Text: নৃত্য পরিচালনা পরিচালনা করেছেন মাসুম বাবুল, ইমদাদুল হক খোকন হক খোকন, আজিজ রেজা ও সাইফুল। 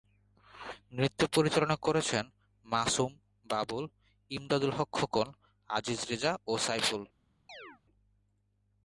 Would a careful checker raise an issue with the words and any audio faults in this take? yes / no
yes